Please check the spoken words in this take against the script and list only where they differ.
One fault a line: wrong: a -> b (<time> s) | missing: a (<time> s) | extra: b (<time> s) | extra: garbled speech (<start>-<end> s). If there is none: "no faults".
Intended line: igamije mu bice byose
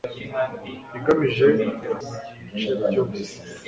no faults